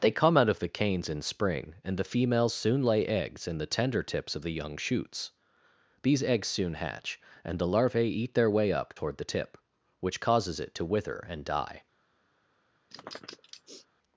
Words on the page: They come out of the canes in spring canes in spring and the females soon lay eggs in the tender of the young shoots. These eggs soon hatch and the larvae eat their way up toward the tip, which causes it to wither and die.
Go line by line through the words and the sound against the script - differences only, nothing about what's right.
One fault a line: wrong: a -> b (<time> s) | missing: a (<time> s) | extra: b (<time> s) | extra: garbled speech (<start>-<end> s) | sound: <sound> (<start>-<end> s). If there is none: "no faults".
missing: canes in spring (1.8 s)
extra: tips (4.0 s)
sound: sniff (12.9-13.9 s)